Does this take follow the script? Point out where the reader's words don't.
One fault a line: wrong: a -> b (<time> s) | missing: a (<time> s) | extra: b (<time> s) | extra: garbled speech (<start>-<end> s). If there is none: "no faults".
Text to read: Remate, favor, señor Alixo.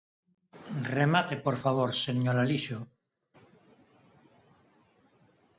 extra: por (1.4 s)